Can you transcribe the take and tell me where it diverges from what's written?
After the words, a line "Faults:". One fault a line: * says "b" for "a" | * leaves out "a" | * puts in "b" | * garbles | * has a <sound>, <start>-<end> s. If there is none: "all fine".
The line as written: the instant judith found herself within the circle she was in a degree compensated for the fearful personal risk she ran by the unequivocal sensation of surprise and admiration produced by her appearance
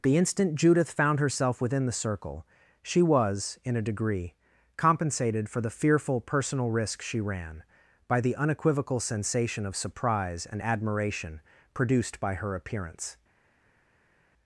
the instant judith found herself within the circle she was in a degree compensated for the fearful personal risk she ran by the unequivocal sensation of surprise and admiration produced by her appearance
Faults:
all fine